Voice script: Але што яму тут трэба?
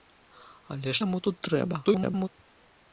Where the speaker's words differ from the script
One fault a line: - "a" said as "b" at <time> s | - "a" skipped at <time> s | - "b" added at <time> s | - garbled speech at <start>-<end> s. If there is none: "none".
- "што" skipped at 0.9 s
- garbled speech at 1.8-2.3 s